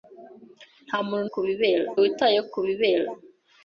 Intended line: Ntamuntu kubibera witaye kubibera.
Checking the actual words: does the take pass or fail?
pass